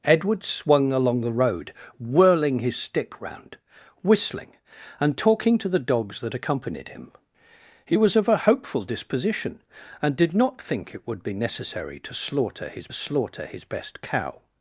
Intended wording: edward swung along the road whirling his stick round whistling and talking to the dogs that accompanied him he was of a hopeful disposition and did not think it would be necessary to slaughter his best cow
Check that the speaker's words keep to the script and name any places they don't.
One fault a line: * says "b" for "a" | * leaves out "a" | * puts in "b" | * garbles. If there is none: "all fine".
* puts in "slaughter his"